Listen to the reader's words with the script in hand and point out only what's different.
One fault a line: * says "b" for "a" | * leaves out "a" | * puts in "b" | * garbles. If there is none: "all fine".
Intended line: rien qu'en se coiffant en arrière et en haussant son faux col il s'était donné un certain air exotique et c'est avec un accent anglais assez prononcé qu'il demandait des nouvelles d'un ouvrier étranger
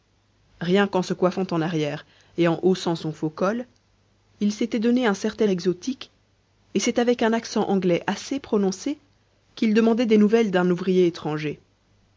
* leaves out "air"